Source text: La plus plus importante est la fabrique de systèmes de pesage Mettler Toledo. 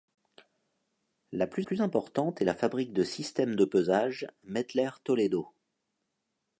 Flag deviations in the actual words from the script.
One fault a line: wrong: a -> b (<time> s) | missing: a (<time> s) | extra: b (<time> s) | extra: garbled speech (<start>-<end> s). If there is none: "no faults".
no faults